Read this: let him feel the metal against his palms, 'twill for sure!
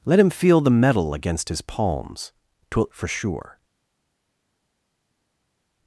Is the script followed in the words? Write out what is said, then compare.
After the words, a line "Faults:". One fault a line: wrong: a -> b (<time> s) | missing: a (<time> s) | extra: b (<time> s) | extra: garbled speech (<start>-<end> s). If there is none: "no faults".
let him feel the metal against his palms, 'twill for sure!
Faults:
no faults